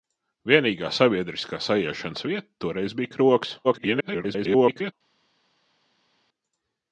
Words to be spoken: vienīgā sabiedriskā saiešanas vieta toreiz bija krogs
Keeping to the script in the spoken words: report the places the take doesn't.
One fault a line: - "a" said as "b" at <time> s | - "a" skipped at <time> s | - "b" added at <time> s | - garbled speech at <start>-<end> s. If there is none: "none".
- garbled speech at 3.6-4.9 s